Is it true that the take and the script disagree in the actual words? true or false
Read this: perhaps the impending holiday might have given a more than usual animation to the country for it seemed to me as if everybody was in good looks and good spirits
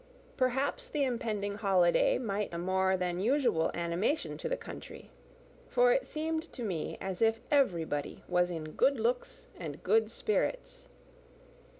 true